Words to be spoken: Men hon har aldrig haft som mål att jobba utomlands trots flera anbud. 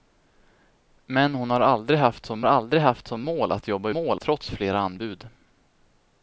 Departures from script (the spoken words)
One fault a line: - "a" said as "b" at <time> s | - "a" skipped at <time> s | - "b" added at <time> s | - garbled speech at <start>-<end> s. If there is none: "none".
- "aldrig haft som" added at 2.5 s
- "utomlands" said as "mål" at 3.9 s